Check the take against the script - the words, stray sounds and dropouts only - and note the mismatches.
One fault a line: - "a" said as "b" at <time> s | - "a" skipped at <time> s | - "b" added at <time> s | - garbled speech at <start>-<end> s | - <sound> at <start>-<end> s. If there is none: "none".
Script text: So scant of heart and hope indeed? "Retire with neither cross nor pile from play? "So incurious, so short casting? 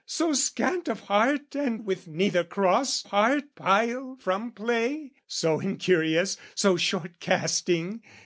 - "hope indeed Retire" skipped at 1.8 s
- "nor" said as "heart" at 3.0 s